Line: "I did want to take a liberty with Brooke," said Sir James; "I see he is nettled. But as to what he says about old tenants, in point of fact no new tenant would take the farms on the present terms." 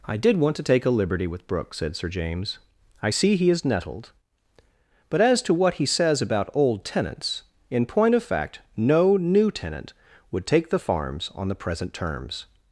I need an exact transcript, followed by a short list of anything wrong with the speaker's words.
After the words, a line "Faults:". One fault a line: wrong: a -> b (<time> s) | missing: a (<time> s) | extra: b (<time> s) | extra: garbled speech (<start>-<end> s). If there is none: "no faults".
"I did want to take a liberty with Brooke," said Sir James; "I see he is nettled. But as to what he says about old tenants, in point of fact no new tenant would take the farms on the present terms."
Faults:
no faults